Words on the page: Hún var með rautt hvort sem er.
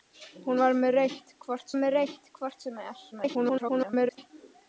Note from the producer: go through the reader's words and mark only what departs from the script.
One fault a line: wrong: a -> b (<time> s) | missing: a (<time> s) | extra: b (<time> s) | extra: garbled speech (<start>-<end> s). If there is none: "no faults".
extra: með rautt hvort (1.8 s)
extra: garbled speech (3.1-4.3 s)